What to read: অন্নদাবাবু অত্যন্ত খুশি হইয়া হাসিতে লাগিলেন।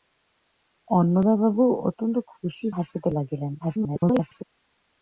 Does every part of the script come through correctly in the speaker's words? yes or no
no